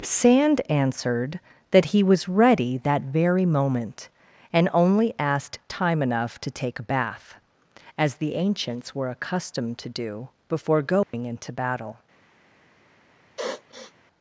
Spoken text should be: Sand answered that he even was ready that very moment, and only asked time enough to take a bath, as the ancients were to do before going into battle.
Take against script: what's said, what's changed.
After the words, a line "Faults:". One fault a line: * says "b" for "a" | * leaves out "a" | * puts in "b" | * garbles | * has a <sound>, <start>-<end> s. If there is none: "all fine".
Sand answered that he was ready that very moment, and only asked time enough to take a bath, as the ancients were accustomed to do before going into battle.
Faults:
* leaves out "even"
* puts in "accustomed"
* has a dropout, 11.0-11.1 s
* has a sniff, 13.4-13.9 s